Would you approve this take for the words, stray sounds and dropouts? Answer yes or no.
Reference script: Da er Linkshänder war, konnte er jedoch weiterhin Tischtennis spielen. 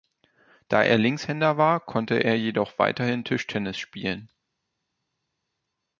yes